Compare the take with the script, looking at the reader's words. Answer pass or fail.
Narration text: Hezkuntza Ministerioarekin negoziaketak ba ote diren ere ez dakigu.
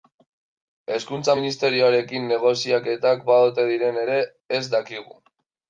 pass